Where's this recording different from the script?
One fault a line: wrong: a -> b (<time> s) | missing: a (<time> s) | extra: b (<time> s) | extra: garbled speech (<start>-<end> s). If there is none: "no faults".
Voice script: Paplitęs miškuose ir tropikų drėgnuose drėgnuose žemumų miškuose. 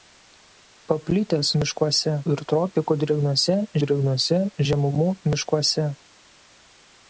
no faults